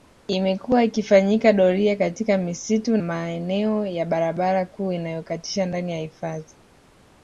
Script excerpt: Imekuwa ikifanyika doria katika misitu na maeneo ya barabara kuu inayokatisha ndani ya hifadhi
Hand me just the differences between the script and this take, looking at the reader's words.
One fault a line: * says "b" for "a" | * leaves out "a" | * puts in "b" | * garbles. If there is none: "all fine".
* leaves out "na"